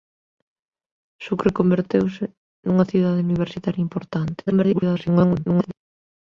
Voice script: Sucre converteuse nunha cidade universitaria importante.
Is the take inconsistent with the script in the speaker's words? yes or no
yes